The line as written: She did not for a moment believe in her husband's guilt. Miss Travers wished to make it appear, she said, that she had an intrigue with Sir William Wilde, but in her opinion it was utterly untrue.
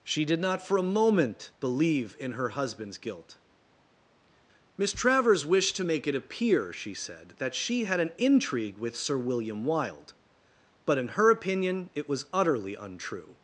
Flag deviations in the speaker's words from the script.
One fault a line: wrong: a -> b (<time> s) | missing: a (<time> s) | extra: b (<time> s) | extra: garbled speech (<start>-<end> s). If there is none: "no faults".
no faults